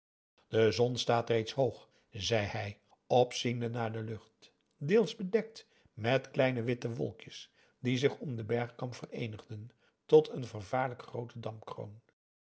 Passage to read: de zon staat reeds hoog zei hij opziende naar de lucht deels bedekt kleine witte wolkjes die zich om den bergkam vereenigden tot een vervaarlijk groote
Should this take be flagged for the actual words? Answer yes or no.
yes